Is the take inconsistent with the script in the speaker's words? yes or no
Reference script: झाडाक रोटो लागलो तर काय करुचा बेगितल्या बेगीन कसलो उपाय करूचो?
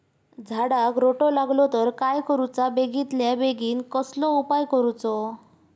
no